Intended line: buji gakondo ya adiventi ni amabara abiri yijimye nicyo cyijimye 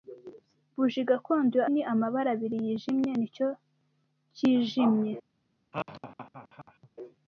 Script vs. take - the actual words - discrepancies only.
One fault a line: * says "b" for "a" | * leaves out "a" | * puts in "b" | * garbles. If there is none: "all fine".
* leaves out "adiventi"